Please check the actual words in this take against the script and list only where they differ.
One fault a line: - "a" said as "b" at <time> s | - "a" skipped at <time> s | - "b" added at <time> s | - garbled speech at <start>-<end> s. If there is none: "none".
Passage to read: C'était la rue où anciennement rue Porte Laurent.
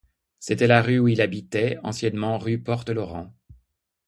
- "il habitait" added at 1.1 s